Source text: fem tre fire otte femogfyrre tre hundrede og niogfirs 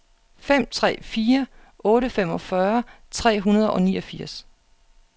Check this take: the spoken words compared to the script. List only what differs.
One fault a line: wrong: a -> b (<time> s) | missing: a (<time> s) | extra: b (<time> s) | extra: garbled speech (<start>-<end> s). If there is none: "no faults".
no faults